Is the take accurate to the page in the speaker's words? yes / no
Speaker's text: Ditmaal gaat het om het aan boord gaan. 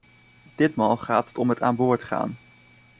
yes